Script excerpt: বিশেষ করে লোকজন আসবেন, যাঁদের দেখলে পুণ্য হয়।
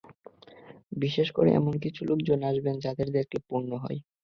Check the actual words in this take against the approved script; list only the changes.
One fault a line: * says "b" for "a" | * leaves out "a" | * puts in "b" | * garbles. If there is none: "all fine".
* puts in "এমন কিছু"